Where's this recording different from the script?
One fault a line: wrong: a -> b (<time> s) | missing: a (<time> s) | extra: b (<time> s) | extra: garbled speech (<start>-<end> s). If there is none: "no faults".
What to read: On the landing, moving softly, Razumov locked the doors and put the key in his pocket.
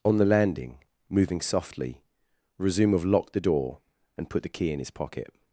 wrong: doors -> door (3.4 s)